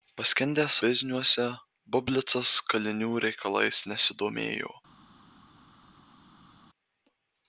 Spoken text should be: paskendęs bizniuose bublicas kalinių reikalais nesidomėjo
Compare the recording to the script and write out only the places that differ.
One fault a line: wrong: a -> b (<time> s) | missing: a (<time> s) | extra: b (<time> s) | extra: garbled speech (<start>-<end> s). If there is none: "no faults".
no faults